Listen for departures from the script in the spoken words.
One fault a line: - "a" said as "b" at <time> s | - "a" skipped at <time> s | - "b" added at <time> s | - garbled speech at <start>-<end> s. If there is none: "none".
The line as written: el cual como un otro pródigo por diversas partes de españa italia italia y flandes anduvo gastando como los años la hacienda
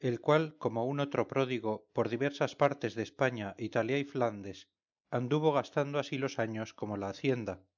- "italia" skipped at 4.0 s
- "como" said as "así" at 6.0 s
- "como" added at 6.7 s